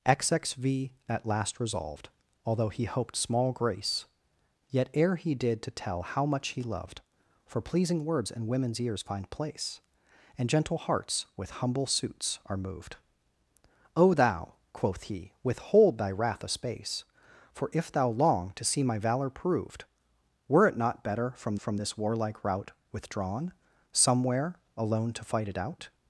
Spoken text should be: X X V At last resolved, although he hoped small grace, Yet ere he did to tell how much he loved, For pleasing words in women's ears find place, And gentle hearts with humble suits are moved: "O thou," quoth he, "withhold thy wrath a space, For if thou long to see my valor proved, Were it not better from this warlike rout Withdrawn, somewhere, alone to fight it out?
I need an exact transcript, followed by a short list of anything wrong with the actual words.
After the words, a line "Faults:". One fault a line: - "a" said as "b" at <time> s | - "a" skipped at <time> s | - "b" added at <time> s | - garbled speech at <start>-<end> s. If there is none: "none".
X X V At last resolved, although he hoped small grace, Yet ere he did to tell how much he loved, For pleasing words in women's ears find place, And gentle hearts with humble suits are moved: "O thou," quoth he, "withhold thy wrath a space, For if thou long to see my valor proved, Were it not better from from this warlike rout Withdrawn, somewhere, alone to fight it out?
Faults:
- "from" added at 21.6 s